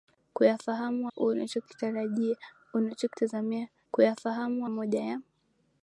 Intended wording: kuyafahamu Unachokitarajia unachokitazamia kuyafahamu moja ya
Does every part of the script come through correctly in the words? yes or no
yes